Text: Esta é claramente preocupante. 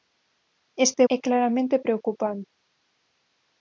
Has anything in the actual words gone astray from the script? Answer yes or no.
no